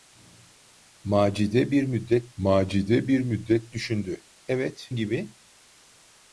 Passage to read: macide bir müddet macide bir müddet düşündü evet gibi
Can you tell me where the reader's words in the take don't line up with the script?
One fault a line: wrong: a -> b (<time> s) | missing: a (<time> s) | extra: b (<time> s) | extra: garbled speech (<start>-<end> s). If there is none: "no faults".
no faults